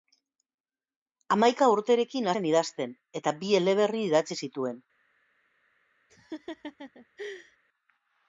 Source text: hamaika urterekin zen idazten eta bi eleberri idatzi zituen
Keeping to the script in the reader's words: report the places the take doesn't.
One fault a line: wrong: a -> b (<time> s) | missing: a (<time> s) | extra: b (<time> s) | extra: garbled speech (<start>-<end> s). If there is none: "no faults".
no faults